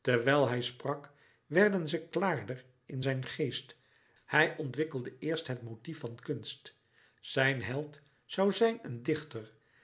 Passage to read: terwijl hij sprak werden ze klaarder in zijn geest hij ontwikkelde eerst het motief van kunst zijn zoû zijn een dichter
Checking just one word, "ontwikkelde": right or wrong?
right